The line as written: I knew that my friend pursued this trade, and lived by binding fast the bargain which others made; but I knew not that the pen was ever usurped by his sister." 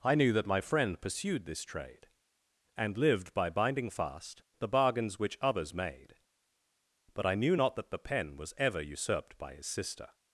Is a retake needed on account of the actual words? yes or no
yes